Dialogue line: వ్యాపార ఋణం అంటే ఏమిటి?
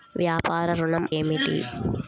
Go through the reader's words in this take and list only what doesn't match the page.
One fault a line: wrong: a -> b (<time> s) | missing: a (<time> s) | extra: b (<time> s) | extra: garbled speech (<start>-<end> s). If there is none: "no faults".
missing: అంటే (1.1 s)